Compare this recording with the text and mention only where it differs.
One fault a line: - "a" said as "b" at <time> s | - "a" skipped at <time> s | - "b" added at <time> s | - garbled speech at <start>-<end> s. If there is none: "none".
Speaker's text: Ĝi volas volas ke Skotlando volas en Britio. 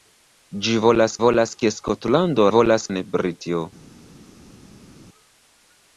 none